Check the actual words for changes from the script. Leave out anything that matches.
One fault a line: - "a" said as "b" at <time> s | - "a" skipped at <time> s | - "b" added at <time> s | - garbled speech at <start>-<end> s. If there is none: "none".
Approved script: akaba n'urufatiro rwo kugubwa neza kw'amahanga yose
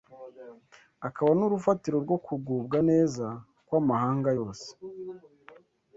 none